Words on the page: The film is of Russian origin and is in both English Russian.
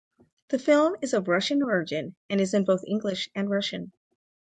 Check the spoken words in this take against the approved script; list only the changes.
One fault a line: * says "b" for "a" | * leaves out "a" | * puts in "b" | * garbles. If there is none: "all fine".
* puts in "and"